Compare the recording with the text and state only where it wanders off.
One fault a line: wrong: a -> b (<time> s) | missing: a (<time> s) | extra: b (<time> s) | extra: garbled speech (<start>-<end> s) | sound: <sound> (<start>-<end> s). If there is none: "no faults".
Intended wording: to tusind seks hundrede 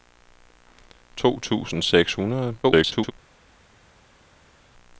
extra: garbled speech (2.6-3.1 s)